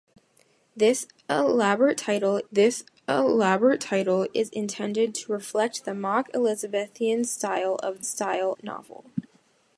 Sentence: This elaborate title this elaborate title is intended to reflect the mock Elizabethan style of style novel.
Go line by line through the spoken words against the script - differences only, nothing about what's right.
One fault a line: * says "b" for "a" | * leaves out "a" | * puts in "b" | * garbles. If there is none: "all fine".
all fine